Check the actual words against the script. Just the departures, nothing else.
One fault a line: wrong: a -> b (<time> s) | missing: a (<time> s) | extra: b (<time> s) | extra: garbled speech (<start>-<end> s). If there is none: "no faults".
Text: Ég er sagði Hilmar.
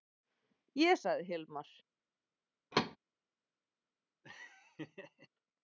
no faults